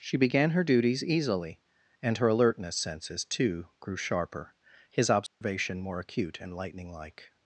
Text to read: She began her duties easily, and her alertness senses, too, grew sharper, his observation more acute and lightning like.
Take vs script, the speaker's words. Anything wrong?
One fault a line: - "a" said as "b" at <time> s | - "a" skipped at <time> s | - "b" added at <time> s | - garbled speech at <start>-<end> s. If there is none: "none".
none